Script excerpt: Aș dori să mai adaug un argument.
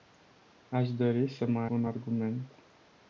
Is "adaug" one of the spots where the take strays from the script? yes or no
yes